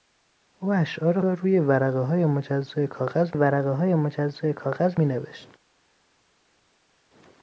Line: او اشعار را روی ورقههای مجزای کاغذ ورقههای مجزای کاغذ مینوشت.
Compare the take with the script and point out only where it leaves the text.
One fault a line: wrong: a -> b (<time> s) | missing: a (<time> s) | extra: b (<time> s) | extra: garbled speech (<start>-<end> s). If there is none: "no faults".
no faults